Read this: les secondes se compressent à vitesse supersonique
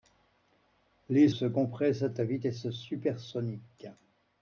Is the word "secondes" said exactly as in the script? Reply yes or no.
no